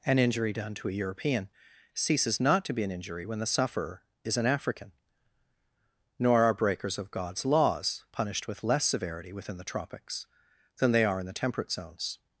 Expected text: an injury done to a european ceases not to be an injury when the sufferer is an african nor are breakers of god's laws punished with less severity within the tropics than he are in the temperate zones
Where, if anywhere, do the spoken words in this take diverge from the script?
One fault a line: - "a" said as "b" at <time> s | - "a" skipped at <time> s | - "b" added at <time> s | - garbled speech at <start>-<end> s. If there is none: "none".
- "he" said as "they" at 10.9 s